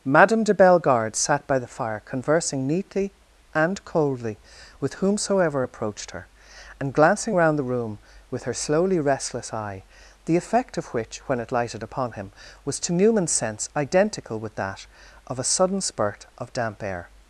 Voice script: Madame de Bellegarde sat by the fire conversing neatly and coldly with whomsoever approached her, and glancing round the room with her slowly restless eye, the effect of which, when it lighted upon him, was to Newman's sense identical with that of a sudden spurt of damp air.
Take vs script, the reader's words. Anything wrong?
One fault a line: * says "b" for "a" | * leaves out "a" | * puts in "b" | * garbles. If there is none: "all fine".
all fine